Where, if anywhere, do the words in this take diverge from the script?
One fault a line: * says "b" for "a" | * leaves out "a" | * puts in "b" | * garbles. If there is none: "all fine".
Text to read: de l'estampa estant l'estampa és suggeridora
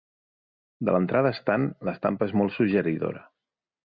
* says "l'entrada" for "l'estampa"
* puts in "molt"